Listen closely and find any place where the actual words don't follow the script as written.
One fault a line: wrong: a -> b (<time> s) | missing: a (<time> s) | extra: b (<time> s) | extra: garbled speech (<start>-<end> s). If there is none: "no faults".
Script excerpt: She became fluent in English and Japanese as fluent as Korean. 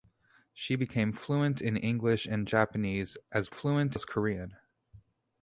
no faults